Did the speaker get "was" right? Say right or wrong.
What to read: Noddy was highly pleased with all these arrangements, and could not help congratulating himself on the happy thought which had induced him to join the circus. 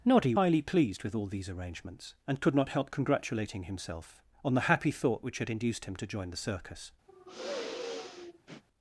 wrong